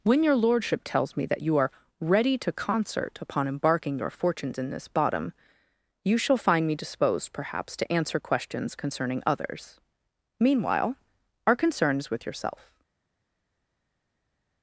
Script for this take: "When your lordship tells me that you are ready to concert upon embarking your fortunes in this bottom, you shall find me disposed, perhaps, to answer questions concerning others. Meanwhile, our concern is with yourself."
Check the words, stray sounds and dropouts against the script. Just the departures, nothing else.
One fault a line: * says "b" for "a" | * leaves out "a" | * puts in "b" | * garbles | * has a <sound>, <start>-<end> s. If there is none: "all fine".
all fine